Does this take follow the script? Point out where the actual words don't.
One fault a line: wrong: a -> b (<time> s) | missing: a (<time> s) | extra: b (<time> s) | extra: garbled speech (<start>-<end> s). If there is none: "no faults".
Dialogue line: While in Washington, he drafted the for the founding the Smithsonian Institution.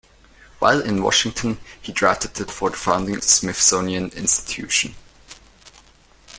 no faults